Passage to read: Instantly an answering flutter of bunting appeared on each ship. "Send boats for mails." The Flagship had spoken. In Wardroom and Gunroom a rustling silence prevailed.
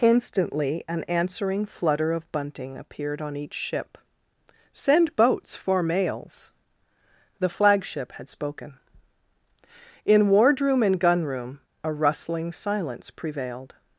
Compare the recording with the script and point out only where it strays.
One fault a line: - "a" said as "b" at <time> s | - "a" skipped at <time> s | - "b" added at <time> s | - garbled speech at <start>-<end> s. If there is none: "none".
none